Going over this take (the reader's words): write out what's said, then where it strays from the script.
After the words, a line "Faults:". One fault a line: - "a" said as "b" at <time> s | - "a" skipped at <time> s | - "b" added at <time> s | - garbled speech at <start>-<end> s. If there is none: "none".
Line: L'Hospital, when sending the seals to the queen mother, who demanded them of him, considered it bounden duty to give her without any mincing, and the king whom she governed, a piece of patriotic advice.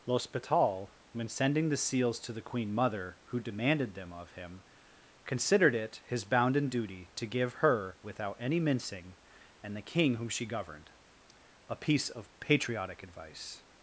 L'Hospital, when sending the seals to the queen mother, who demanded them of him, considered it his bounden duty to give her without any mincing, and the king whom she governed, a piece of patriotic advice.
Faults:
- "his" added at 6.1 s